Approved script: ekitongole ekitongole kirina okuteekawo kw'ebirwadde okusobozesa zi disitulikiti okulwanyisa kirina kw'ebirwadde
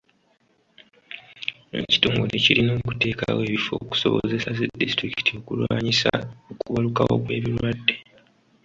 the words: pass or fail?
fail